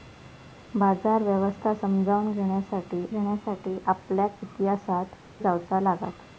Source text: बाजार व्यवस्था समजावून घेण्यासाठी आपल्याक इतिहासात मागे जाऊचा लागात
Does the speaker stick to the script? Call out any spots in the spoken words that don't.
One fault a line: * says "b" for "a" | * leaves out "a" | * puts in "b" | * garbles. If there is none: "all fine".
* puts in "घेण्यासाठी"
* leaves out "मागे"